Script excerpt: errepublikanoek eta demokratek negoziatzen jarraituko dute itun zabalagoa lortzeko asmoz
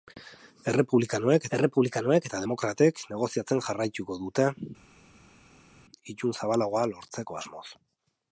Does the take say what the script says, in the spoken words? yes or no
no